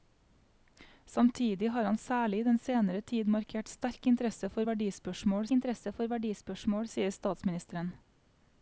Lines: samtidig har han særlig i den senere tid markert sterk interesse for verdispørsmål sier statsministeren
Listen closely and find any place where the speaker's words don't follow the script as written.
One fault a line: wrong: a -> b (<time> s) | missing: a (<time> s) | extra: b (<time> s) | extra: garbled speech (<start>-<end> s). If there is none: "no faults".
extra: interesse for verdispørsmål (5.5 s)